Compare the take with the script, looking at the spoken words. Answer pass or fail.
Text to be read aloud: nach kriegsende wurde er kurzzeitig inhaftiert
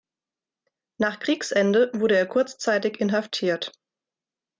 pass